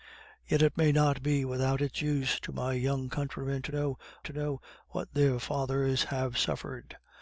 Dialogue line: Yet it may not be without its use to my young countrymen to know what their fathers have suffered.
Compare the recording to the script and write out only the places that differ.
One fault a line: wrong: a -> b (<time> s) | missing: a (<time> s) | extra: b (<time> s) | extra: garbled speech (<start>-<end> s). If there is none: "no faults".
extra: to know (4.2 s)